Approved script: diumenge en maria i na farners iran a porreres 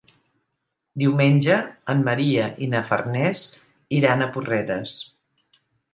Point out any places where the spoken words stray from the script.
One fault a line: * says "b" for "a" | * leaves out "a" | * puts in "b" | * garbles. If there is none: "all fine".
all fine